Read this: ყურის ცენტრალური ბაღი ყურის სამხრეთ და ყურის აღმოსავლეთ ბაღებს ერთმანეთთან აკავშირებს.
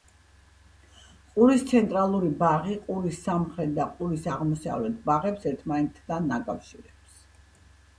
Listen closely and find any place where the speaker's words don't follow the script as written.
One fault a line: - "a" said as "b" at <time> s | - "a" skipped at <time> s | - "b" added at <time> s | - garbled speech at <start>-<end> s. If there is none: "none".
none